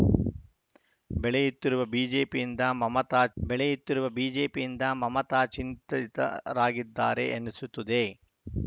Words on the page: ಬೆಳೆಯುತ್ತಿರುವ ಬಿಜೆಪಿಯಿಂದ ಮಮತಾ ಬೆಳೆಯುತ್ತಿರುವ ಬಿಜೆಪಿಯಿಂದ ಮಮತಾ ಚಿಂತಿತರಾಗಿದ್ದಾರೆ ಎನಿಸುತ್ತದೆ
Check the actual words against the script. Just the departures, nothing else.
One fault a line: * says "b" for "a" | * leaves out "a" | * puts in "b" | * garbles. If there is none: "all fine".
all fine